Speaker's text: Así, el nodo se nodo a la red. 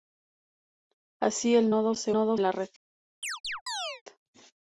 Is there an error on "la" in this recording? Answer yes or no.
no